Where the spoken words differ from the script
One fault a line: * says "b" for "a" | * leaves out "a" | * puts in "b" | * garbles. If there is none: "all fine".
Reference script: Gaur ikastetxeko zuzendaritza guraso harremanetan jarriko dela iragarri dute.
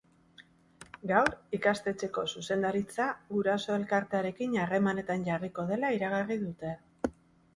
* puts in "elkartearekin"